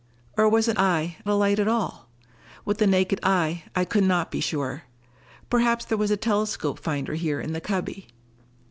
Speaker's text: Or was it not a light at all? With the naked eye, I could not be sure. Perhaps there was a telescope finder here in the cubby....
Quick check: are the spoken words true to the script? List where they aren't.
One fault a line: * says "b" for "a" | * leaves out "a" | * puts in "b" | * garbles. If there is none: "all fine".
* says "eye" for "not"